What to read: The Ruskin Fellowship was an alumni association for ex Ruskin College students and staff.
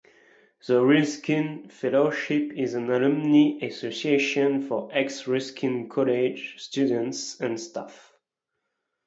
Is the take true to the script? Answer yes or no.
no